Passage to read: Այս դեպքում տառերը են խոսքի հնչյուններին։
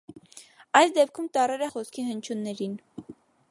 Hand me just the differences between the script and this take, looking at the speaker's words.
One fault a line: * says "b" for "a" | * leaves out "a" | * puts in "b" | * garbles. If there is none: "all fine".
all fine